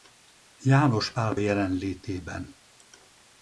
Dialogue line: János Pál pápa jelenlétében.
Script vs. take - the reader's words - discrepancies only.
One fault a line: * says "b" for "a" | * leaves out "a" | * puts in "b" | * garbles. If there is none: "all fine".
* leaves out "pápa"